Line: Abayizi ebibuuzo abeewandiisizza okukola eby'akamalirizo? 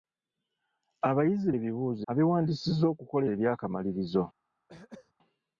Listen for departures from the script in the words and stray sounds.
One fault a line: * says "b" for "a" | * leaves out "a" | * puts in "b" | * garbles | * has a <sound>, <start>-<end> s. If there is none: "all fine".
* has a throat clearing, 4.7-5.1 s